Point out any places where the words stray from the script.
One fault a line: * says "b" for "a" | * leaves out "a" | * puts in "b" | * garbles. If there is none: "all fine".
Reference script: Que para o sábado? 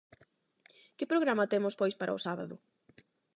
* puts in "programa temos pois"